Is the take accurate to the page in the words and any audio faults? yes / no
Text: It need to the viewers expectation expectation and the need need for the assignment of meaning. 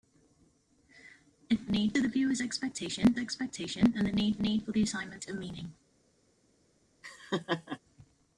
no